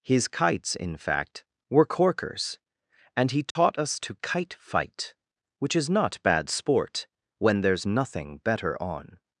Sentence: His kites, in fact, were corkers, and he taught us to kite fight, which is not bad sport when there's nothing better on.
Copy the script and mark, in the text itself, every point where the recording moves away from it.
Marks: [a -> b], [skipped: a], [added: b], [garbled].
His kites, in fact, were corkers, and he taught us to kite fight, which is not bad sport when there's nothing better on.